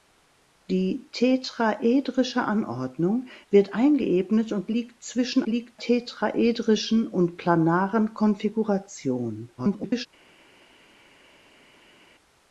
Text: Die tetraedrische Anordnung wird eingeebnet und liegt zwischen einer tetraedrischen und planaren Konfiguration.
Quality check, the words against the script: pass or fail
fail